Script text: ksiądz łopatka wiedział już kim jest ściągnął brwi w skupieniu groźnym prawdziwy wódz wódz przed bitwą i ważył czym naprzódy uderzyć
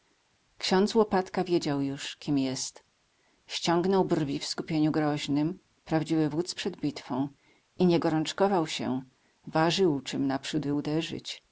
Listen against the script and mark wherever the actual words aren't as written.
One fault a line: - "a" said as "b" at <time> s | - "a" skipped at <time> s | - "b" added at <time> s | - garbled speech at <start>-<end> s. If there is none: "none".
- "wódz" skipped at 6.5 s
- "nie gorączkował się" added at 7.9 s